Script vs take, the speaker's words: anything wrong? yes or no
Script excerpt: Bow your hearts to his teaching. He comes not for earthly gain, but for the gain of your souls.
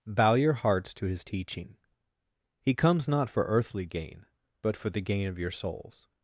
no